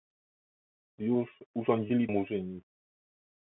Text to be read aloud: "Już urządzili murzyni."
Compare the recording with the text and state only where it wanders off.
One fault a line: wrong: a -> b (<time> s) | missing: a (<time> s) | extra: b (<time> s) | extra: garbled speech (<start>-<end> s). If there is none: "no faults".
no faults